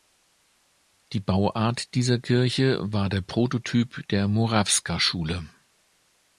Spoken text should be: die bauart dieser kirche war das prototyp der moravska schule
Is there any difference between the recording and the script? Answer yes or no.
yes